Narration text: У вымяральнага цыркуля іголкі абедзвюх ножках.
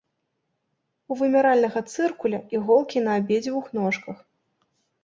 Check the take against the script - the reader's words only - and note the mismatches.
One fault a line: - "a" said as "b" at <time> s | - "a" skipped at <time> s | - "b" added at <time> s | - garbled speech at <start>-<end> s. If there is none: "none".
- "на" added at 3.1 s